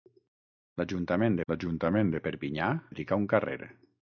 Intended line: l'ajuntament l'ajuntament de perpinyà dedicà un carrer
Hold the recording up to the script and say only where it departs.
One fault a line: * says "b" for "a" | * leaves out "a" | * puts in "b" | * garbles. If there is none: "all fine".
all fine